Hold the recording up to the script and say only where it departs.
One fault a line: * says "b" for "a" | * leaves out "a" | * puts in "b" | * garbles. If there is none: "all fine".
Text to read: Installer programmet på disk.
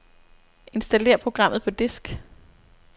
all fine